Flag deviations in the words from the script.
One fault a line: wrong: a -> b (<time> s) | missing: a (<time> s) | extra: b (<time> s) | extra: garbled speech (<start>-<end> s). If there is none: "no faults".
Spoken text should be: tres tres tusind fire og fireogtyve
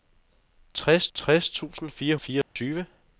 no faults